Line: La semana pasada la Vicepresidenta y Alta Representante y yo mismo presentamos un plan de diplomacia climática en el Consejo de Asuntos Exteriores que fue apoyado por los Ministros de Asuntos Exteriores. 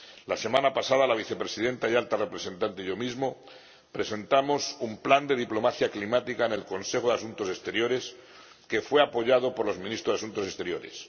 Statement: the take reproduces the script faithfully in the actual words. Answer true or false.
true